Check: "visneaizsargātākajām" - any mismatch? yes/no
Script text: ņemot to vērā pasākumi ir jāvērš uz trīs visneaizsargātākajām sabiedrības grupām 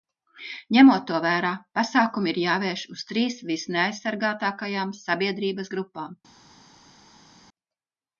no